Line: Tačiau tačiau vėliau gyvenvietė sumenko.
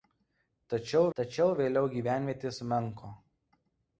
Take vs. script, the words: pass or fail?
pass